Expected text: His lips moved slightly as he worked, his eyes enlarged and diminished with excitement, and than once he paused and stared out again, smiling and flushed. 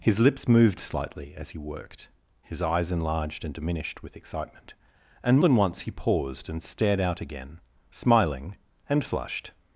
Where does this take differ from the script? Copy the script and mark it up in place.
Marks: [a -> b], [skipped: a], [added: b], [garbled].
His lips moved slightly as he worked, his eyes enlarged and diminished with excitement, and than once he paused and stared out again, smiling and flushed.